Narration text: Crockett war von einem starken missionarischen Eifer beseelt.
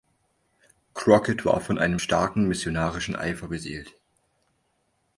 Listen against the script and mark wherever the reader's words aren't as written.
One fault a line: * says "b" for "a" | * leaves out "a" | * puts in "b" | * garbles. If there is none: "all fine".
all fine